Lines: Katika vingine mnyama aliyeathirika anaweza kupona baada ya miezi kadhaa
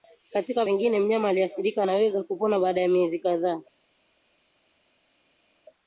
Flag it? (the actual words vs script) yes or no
no